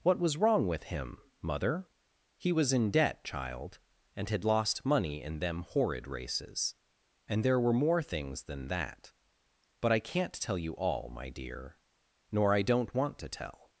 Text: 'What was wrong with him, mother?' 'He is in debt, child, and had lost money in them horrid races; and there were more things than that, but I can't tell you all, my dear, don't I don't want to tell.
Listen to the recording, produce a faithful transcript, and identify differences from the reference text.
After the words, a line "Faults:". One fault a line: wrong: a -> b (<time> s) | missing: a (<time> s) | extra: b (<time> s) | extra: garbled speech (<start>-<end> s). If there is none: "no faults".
'What was wrong with him, mother?' 'He was in debt, child, and had lost money in them horrid races; and there were more things than that, but I can't tell you all, my dear, nor I don't want to tell.
Faults:
wrong: is -> was (2.5 s)
wrong: don't -> nor (12.3 s)